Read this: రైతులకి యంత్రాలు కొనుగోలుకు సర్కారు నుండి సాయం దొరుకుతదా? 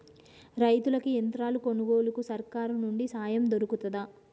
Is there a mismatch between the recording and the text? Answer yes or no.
no